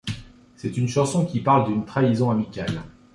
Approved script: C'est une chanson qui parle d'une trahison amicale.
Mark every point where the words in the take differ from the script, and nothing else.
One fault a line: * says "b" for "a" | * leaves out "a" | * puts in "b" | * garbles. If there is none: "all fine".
all fine